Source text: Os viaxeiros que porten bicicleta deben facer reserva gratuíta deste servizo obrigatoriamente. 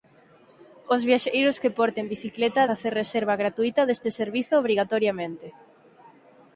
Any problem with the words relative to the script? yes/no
yes